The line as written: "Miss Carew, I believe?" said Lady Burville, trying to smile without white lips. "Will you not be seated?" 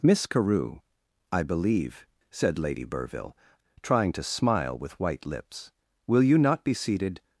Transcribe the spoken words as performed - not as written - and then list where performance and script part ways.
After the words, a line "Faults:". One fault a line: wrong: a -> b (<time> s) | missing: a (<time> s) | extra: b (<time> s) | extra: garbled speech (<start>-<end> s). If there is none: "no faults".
"Miss Carew, I believe?" said Lady Burville, trying to smile with white lips. "Will you not be seated?"
Faults:
wrong: without -> with (4.8 s)